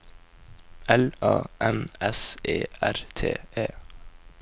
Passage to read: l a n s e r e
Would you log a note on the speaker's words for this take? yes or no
yes